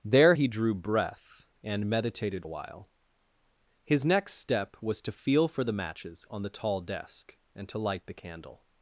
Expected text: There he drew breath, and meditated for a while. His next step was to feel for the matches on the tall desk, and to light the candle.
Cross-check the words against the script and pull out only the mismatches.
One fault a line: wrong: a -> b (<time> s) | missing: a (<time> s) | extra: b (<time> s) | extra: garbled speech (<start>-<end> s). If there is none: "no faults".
missing: for (2.5 s)